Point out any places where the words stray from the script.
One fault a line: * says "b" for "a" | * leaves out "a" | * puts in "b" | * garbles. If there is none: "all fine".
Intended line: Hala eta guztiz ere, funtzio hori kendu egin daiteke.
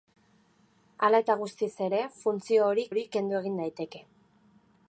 * puts in "hori"